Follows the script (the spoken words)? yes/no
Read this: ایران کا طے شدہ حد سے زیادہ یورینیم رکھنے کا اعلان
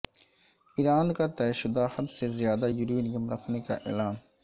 yes